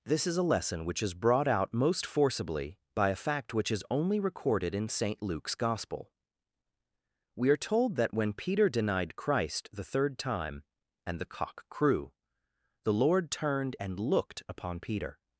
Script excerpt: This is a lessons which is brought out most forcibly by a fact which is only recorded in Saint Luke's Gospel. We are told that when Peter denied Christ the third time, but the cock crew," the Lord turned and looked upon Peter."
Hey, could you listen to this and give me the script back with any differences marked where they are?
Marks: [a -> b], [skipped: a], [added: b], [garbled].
This is a [lessons -> lesson] which is brought out most forcibly by a fact which is only recorded in Saint Luke's Gospel. We are told that when Peter denied Christ the third time, [but -> and] the cock crew," the Lord turned and looked upon Peter."